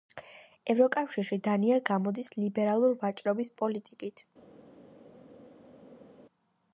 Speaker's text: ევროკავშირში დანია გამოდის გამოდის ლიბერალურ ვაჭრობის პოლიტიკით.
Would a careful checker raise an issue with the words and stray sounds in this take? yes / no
yes